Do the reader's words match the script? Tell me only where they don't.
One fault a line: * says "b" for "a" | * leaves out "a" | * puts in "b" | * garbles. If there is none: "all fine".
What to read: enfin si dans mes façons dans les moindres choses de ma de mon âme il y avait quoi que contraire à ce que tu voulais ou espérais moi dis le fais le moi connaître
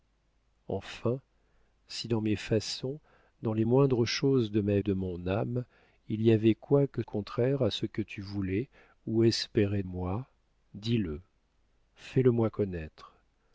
all fine